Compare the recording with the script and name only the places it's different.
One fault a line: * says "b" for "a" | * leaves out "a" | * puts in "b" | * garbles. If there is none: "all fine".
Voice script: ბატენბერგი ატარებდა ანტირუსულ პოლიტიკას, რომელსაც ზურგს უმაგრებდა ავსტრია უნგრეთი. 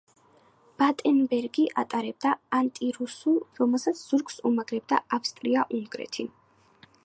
* leaves out "პოლიტიკას"